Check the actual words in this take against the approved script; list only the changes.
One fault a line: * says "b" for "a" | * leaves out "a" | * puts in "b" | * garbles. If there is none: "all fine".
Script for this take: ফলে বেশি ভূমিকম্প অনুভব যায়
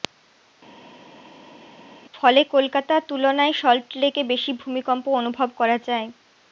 * puts in "কলকাতা তুলনায় সল্টলেকে"
* puts in "করা"